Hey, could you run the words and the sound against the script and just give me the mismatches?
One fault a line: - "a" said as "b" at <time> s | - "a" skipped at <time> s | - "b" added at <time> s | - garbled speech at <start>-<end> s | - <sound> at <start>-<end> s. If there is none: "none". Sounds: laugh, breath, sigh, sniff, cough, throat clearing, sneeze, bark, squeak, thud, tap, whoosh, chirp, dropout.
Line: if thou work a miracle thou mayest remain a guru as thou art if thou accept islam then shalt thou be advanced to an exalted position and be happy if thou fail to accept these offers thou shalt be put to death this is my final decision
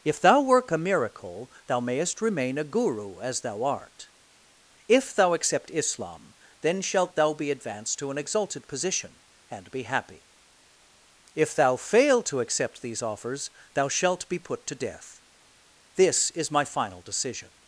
none